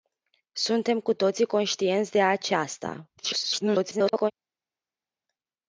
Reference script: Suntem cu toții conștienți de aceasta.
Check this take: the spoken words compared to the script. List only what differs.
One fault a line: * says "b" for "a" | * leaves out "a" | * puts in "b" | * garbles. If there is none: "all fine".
* garbles